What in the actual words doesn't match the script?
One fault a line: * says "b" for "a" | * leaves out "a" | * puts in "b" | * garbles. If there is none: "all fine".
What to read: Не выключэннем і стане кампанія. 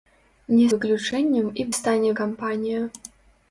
all fine